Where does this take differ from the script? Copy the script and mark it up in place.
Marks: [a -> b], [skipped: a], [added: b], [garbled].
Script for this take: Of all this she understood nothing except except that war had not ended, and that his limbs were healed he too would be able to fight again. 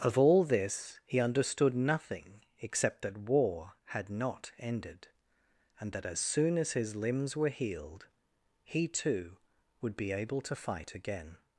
Of all this [she -> he] understood nothing except [skipped: except] that war had not ended, and that [added: as soon as] his limbs were healed he too would be able to fight again.